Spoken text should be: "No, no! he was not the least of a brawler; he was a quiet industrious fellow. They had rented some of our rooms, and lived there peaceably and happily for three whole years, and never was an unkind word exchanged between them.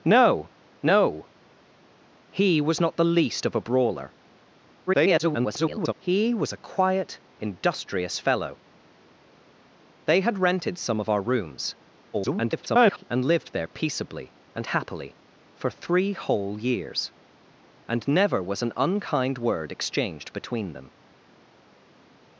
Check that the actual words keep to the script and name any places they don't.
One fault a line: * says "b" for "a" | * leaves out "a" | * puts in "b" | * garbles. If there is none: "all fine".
* garbles
* garbles